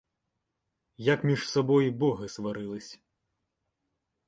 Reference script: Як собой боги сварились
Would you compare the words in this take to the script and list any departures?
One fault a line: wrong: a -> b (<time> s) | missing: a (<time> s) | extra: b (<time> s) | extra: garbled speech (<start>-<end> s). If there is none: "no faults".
extra: між (1.2 s)